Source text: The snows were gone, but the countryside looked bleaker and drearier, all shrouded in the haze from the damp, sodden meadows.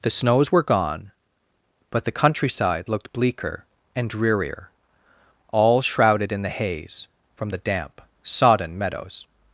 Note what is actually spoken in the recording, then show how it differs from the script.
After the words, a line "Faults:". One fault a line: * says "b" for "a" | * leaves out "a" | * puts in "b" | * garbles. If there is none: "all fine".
The snows were gone, but the countryside looked bleaker and drearier, all shrouded in the haze from the damp, sodden meadows.
Faults:
all fine